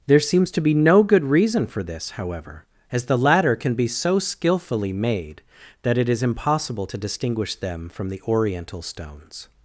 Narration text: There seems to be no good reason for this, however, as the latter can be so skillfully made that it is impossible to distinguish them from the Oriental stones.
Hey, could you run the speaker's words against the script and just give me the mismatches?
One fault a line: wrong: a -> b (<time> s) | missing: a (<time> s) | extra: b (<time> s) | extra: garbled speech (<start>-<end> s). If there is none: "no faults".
no faults